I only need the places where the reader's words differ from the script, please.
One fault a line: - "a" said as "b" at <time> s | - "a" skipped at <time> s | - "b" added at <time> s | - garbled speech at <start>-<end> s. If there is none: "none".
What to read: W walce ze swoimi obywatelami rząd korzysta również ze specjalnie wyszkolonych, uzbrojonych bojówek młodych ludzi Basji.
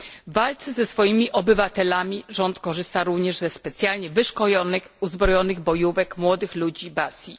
none